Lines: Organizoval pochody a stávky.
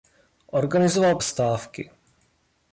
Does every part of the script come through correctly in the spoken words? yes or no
no